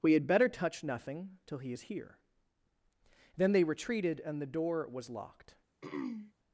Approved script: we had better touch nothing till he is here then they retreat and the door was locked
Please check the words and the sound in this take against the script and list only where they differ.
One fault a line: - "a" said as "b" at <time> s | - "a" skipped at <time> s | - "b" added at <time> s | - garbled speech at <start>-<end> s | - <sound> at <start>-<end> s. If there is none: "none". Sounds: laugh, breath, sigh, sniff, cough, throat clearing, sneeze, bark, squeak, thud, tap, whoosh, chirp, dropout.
- "retreat" said as "retreated" at 3.6 s
- throat clearing at 5.8-6.3 s